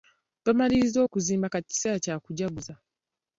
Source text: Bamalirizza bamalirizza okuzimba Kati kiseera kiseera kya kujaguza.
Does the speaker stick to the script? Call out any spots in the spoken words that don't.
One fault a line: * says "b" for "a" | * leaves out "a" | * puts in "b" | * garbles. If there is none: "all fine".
* leaves out "bamalirizza"
* leaves out "kiseera"